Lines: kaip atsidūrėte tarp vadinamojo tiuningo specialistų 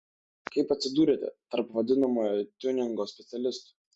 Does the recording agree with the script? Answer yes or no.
yes